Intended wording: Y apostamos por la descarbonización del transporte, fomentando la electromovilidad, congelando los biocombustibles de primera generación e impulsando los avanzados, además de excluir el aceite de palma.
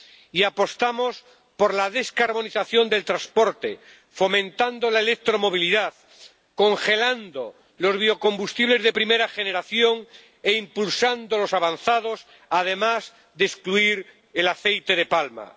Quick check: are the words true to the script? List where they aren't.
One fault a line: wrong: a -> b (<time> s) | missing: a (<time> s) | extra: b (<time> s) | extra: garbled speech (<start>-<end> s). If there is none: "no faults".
no faults